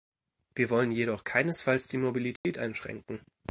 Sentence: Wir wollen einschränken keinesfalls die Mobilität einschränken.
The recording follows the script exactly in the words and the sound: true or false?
false